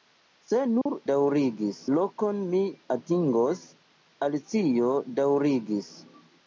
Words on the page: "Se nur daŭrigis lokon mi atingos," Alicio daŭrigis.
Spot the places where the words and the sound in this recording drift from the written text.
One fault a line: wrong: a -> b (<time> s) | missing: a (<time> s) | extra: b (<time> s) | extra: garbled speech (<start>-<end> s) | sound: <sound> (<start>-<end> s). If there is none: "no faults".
sound: dropout (0.8-0.9 s)